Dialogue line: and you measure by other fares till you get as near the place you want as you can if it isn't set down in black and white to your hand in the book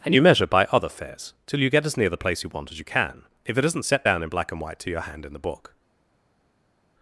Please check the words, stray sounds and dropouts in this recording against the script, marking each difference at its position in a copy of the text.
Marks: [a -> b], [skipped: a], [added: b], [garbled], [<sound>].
and you measure by other fares till you get as near the place you want as you can if it isn't set down in black and white to your hand in the book